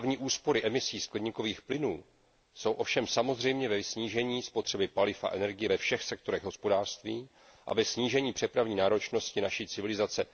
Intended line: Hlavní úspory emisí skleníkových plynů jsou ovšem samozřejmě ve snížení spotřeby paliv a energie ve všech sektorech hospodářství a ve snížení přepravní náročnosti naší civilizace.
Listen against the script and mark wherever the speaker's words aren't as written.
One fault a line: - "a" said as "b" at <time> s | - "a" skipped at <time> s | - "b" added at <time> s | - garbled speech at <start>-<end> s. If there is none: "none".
none